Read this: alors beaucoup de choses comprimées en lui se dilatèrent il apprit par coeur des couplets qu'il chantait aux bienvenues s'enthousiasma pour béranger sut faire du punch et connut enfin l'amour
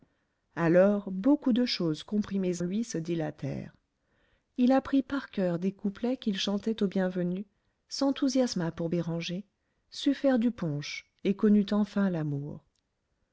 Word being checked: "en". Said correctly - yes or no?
no